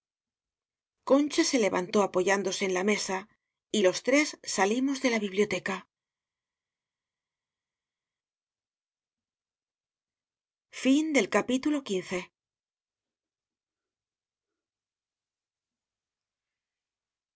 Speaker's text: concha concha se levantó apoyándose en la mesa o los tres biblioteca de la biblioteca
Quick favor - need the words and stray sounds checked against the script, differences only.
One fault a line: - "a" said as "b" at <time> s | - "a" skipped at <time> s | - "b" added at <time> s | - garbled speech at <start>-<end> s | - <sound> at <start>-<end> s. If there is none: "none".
- "concha" skipped at 1.4 s
- "o" said as "y" at 3.7 s
- "biblioteca" said as "salimos" at 4.4 s